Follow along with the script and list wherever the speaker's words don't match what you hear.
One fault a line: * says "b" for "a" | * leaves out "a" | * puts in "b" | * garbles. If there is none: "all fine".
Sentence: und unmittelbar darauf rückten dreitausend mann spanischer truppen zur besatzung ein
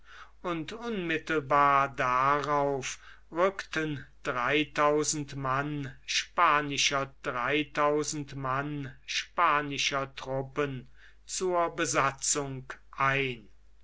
* puts in "dreitausend mann spanischer"